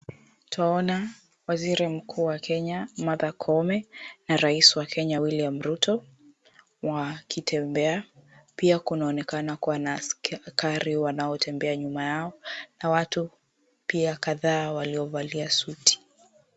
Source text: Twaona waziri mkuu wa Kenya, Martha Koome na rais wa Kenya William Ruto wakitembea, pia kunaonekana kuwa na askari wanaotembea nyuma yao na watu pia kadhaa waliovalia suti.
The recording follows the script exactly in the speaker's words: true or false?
true